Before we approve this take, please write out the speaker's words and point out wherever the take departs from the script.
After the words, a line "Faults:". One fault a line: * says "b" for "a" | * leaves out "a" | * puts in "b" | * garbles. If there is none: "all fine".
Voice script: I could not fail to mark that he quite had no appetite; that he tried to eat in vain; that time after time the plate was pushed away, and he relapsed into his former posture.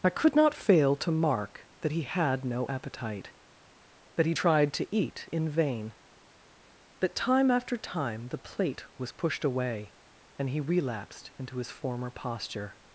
I could not fail to mark that he had no appetite; that he tried to eat in vain; that time after time the plate was pushed away, and he relapsed into his former posture.
Faults:
* leaves out "quite"